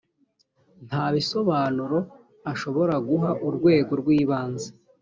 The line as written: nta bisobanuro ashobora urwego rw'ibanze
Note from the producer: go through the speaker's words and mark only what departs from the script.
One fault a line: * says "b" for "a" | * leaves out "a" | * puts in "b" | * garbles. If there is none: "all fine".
* puts in "guha"